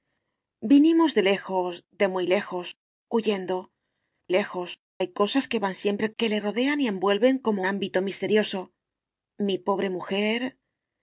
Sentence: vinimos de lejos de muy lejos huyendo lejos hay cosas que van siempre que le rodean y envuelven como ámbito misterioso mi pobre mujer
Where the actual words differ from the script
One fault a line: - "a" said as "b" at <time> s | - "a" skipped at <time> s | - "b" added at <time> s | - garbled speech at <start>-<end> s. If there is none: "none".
none